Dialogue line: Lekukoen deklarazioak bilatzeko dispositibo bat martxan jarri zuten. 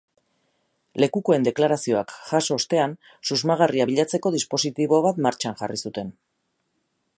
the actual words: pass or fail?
fail